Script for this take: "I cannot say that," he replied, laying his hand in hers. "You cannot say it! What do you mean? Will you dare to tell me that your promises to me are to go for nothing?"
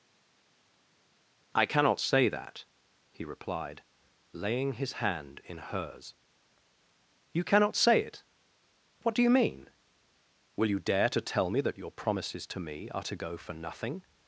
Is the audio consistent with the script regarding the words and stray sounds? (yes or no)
yes